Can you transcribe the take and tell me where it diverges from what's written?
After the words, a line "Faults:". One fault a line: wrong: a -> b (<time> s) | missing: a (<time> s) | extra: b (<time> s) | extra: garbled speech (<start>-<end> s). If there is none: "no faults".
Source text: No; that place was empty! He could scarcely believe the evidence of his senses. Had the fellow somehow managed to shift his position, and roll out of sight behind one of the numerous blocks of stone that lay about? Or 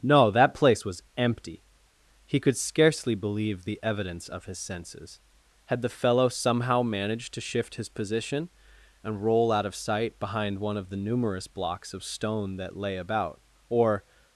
No; that place was empty! He could scarcely believe the evidence of his senses. Had the fellow somehow managed to shift his position, and roll out of sight behind one of the numerous blocks of stone that lay about? Or
Faults:
no faults